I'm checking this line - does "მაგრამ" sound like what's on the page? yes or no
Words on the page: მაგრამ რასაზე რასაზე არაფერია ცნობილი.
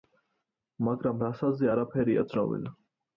yes